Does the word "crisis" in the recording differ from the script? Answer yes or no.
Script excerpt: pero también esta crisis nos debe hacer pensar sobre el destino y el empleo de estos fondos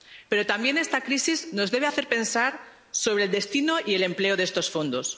no